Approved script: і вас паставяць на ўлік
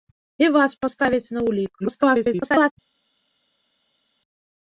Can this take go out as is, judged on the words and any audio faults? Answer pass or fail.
fail